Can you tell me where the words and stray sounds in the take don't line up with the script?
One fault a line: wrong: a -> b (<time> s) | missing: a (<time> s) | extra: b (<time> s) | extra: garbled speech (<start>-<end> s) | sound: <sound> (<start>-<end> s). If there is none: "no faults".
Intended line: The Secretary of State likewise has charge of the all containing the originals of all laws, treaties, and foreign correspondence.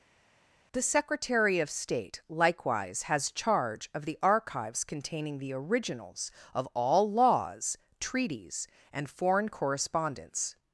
wrong: all -> archives (4.2 s)